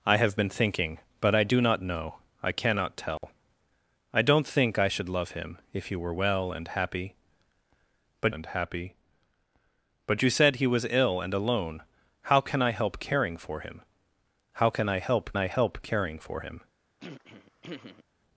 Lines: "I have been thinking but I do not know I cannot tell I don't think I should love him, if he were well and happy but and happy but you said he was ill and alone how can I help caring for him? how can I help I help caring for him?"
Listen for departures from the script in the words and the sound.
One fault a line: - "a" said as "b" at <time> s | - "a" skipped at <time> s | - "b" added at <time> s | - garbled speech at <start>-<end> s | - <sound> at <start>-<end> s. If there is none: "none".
- dropout at 3.2-3.2 s
- throat clearing at 17.0-18.0 s